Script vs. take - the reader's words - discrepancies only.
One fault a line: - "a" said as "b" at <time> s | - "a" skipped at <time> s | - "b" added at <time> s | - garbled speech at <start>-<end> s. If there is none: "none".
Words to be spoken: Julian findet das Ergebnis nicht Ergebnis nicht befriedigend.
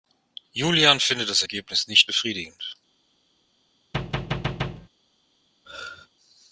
- "Ergebnis nicht" skipped at 2.1 s